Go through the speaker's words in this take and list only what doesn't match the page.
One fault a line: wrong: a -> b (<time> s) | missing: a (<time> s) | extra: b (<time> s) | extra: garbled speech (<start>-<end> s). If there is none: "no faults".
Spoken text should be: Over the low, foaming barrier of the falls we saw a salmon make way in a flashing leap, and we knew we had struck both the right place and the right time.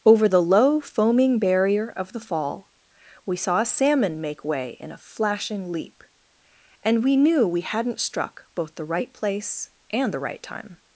wrong: falls -> fall (2.2 s)
wrong: had -> hadn't (7.6 s)